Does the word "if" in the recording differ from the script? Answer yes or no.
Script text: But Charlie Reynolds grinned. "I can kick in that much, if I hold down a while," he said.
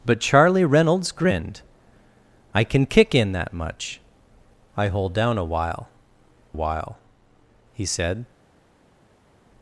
yes